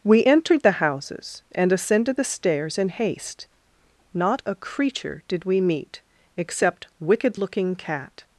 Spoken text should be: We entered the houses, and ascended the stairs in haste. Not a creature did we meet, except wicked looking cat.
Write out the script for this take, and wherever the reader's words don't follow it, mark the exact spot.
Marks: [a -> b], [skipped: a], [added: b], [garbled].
We entered the houses, and ascended the stairs in haste. Not a creature did we meet, except wicked looking cat.